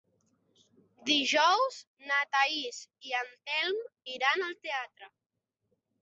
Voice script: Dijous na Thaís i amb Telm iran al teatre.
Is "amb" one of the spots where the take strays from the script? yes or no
yes